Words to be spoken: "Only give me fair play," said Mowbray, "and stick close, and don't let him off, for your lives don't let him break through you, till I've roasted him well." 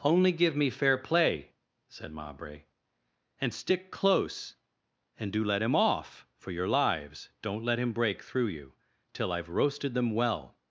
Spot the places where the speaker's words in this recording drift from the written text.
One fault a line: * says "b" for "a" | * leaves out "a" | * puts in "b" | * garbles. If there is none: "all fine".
* says "do" for "don't"
* says "them" for "him"